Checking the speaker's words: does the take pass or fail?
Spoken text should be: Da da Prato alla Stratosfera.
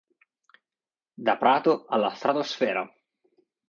fail